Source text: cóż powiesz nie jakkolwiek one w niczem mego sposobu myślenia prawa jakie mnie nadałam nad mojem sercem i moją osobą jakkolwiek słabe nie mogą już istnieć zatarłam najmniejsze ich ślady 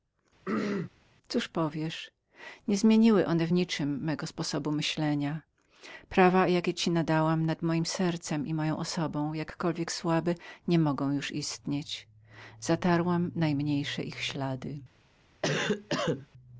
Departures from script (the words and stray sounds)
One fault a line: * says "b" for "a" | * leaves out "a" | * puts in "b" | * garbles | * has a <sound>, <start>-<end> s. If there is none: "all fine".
* has a throat clearing, 0.5-0.9 s
* says "zmieniły" for "jakkolwiek"
* says "ci" for "mnie"
* has a cough, 15.4-16.3 s